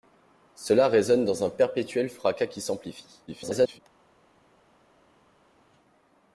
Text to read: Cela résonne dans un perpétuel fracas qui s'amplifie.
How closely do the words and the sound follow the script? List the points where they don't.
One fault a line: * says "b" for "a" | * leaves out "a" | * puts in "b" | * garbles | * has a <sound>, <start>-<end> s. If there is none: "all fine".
* garbles